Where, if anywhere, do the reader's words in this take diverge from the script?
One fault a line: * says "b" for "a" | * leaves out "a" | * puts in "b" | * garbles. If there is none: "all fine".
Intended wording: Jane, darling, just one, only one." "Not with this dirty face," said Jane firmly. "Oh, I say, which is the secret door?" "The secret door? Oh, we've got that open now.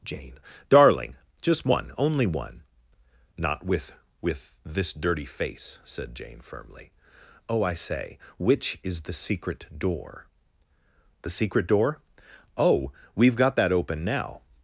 * puts in "with"